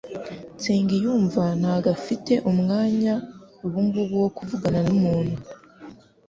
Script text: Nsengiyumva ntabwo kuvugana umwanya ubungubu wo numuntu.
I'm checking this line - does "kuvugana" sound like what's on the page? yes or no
no